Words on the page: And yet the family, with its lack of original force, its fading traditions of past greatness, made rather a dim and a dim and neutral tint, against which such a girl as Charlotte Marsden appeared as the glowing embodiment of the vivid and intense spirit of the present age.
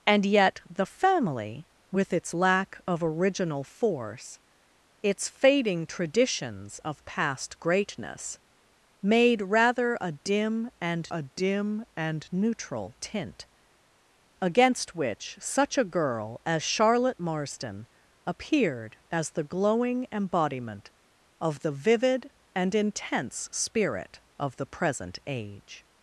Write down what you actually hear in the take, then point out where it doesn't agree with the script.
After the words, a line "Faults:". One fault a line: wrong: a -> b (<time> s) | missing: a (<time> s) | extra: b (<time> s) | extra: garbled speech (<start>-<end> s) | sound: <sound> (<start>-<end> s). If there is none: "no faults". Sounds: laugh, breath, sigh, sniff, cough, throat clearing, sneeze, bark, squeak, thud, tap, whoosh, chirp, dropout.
And yet the family, with its lack of original force, its fading traditions of past greatness, made rather a dim and a dim and neutral tint, against which such a girl as Charlotte Marsden appeared as the glowing embodiment of the vivid and intense spirit of the present age.
Faults:
no faults